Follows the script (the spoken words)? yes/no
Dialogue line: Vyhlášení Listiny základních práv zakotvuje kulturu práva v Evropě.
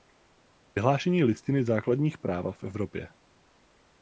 no